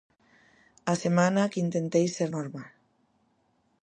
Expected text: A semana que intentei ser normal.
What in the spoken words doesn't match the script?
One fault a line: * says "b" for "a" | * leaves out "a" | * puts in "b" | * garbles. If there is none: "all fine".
all fine